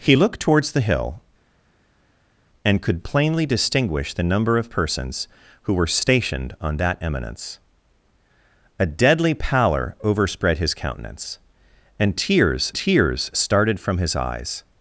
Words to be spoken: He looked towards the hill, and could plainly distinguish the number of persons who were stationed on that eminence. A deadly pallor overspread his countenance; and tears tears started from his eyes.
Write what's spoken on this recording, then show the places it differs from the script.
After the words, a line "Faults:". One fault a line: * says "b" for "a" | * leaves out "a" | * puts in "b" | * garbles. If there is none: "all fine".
He looked towards the hill, and could plainly distinguish the number of persons who were stationed on that eminence. A deadly pallor overspread his countenance; and tears tears started from his eyes.
Faults:
all fine